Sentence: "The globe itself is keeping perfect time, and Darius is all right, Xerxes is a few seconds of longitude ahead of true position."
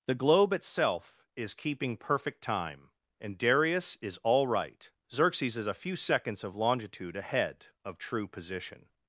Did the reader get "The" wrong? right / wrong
right